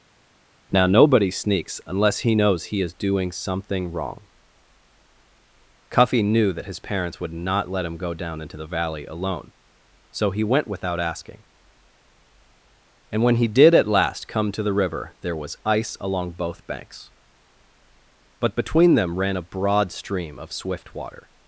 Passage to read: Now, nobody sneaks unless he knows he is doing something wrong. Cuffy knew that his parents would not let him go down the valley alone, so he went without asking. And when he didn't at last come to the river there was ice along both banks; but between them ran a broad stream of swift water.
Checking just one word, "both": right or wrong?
right